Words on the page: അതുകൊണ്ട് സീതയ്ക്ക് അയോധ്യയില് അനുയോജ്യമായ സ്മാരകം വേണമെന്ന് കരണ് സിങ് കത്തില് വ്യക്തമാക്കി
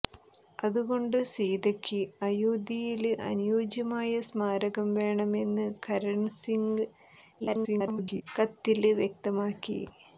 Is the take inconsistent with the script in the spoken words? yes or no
yes